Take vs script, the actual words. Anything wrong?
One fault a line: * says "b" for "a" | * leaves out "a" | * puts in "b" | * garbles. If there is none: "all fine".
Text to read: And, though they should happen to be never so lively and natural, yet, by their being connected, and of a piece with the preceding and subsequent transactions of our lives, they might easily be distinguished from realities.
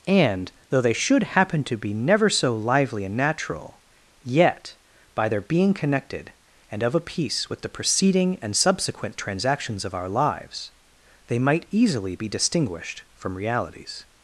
all fine